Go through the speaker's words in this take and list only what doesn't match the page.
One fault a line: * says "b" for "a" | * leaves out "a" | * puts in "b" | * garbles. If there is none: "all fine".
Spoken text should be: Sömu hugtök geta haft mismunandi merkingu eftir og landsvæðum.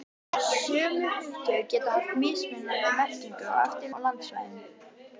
all fine